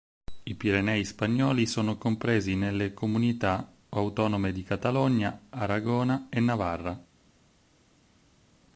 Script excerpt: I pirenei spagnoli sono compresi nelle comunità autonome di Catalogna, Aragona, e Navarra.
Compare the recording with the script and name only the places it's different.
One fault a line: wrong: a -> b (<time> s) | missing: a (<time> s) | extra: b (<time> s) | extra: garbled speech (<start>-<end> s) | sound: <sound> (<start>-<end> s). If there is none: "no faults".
no faults